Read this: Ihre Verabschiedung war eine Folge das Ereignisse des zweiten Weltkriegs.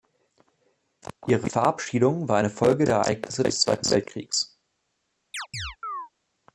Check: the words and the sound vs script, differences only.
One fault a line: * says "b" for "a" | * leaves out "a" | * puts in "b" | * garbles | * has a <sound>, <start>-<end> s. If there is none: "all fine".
* says "der" for "das"
* has a chirp, 5.3-6.1 s